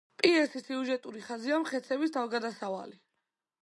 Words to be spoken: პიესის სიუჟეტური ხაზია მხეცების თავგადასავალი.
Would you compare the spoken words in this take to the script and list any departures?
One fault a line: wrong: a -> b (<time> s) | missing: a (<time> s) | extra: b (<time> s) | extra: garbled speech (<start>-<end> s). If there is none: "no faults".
no faults